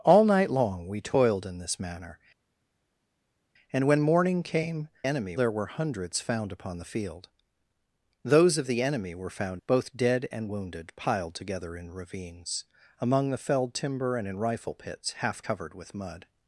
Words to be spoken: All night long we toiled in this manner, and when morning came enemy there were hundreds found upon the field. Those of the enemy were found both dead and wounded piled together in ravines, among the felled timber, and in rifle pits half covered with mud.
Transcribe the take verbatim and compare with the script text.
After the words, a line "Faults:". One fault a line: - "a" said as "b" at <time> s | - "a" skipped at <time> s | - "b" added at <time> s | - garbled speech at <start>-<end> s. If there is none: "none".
All night long we toiled in this manner, and when morning came enemy there were hundreds found upon the field. Those of the enemy were found both dead and wounded piled together in ravines, among the felled timber, and in rifle pits half covered with mud.
Faults:
none